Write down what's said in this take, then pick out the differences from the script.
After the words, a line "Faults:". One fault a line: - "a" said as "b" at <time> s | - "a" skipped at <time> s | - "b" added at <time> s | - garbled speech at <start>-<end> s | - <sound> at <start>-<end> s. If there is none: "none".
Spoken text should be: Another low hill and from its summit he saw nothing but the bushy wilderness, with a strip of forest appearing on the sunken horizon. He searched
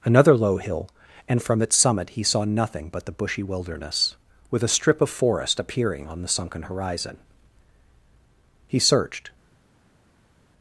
Another low hill and from its summit he saw nothing but the bushy wilderness, with a strip of forest appearing on the sunken horizon. He searched
Faults:
none